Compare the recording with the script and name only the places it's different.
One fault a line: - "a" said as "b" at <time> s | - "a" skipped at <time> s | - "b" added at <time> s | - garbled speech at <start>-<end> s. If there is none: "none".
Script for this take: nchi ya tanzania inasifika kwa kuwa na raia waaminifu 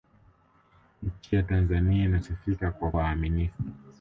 - "kuwa na raia" skipped at 2.9 s